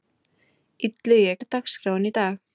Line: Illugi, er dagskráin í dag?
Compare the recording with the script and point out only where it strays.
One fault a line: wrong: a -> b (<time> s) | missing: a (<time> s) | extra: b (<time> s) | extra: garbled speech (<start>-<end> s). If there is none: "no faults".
no faults